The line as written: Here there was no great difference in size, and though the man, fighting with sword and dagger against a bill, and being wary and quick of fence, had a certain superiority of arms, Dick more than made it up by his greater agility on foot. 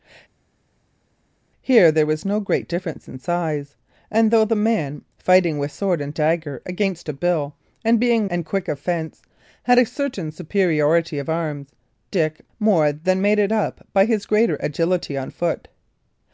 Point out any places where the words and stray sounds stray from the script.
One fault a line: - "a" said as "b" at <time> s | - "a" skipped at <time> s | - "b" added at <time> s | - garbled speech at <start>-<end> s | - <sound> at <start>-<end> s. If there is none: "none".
- "wary" skipped at 8.3 s